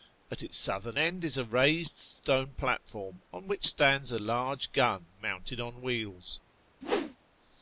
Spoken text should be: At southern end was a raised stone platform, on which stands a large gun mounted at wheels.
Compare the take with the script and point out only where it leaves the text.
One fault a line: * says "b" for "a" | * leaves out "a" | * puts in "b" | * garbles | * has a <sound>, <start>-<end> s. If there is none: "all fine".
* puts in "its"
* says "is" for "was"
* says "on" for "at"
* has a whoosh, 6.8-7.2 s